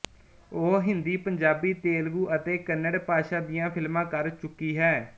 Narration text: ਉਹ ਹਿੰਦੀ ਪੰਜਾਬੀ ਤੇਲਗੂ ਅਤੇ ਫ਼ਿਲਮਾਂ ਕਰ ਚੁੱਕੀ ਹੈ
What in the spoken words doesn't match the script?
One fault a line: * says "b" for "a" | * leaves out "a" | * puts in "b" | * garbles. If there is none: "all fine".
* puts in "ਕੰਨੜ ਭਾਸ਼ਾ ਦੀਆਂ"